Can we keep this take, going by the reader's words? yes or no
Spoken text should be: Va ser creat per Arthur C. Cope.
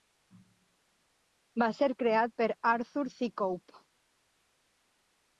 yes